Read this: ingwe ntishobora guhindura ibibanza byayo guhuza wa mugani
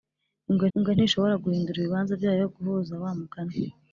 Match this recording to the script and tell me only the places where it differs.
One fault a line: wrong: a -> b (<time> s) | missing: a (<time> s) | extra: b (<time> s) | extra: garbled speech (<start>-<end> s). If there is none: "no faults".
extra: ingwe (0.8 s)